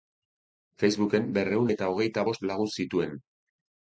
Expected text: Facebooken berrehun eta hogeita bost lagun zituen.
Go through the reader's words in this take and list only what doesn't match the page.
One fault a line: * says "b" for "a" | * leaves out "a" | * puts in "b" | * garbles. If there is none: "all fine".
all fine